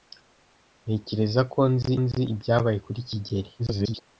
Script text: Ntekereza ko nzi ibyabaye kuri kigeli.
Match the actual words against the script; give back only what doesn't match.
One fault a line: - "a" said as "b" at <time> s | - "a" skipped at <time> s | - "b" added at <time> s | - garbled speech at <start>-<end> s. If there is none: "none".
- "nzi" added at 2.0 s
- garbled speech at 3.6-4.0 s